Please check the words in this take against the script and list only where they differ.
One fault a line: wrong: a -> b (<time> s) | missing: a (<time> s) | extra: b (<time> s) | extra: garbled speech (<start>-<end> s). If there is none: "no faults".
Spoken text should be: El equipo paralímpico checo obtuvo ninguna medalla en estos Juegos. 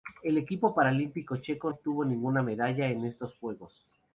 no faults